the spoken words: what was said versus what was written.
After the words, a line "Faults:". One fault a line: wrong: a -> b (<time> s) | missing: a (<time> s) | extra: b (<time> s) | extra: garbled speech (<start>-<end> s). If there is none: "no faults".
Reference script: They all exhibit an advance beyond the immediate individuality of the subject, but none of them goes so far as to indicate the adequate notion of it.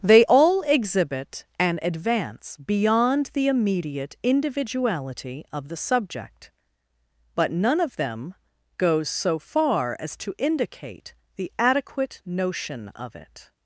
They all exhibit an advance beyond the immediate individuality of the subject, but none of them goes so far as to indicate the adequate notion of it.
Faults:
no faults